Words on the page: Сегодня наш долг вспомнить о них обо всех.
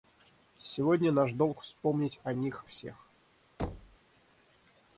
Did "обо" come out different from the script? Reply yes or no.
yes